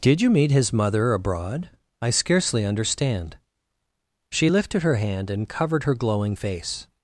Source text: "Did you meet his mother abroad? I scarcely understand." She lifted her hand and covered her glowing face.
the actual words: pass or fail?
pass